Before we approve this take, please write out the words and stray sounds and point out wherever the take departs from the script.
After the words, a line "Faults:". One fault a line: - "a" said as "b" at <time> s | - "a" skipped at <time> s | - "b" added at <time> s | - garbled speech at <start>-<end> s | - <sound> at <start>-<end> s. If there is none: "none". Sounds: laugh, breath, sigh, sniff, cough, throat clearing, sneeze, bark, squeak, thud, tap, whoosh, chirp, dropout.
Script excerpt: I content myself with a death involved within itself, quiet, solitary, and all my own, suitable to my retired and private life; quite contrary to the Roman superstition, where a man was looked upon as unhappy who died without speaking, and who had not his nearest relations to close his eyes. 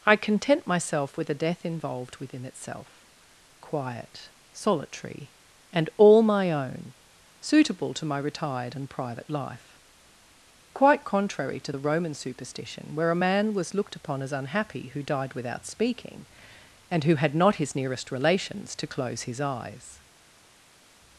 I content myself with a death involved within itself, quiet, solitary, and all my own, suitable to my retired and private life; quite contrary to the Roman superstition, where a man was looked upon as unhappy who died without speaking, and who had not his nearest relations to close his eyes.
Faults:
none